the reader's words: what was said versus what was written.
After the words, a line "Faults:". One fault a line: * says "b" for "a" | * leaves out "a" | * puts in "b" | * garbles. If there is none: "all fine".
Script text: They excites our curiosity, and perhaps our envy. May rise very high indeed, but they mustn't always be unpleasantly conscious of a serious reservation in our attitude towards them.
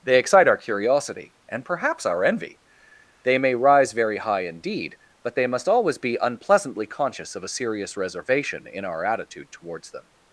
They excite our curiosity, and perhaps our envy. They may rise very high indeed, but they must always be unpleasantly conscious of a serious reservation in our attitude towards them.
Faults:
* says "excite" for "excites"
* puts in "They"
* says "must" for "mustn't"